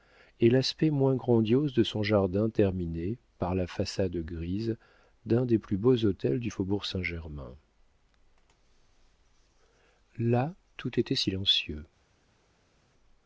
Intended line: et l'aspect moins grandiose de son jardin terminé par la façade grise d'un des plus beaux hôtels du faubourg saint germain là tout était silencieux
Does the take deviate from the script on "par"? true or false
false